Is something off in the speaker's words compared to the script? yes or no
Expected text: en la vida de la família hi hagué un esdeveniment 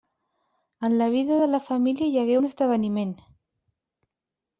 no